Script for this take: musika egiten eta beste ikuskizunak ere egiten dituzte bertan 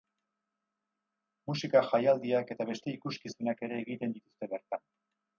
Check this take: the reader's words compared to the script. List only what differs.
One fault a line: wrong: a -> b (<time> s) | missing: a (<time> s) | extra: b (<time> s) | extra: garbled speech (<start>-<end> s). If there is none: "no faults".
wrong: egiten -> jaialdiak (1.9 s)